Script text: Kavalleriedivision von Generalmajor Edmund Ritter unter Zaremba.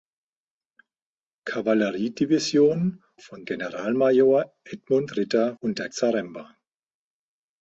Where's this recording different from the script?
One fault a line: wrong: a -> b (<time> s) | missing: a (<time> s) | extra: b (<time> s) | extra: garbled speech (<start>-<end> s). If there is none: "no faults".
no faults